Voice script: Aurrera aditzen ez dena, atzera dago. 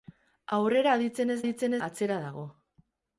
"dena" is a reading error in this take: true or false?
true